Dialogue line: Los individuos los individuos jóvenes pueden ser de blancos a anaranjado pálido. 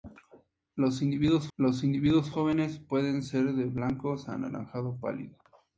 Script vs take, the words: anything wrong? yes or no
no